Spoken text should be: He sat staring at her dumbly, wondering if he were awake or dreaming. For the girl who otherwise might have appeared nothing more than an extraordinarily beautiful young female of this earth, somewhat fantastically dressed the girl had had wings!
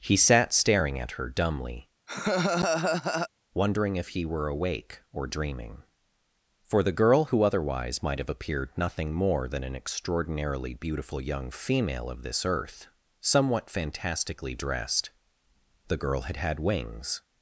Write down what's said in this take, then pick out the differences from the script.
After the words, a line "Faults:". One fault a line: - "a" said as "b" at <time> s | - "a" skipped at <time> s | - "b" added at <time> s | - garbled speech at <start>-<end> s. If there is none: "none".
He sat staring at her dumbly, wondering if he were awake or dreaming. For the girl who otherwise might have appeared nothing more than an extraordinarily beautiful young female of this earth, somewhat fantastically dressed the girl had had wings!
Faults:
none